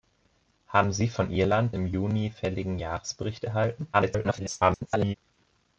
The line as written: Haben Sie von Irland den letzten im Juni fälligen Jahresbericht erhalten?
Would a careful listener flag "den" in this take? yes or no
yes